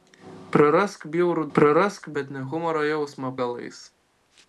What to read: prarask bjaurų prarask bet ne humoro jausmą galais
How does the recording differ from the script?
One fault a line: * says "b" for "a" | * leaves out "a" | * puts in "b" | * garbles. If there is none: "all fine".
all fine